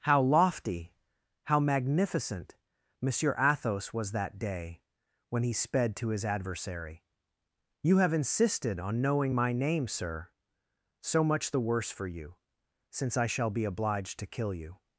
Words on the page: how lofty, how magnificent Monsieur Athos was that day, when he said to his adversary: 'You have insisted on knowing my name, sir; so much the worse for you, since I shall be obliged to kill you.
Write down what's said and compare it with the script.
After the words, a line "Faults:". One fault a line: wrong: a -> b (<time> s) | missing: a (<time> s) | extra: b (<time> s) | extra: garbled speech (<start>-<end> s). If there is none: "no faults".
how lofty, how magnificent Monsieur Athos was that day, when he sped to his adversary: 'You have insisted on knowing my name, sir; so much the worse for you, since I shall be obliged to kill you.
Faults:
wrong: said -> sped (5.5 s)